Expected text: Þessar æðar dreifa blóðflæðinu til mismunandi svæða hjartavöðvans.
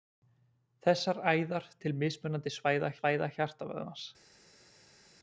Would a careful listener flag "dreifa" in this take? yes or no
yes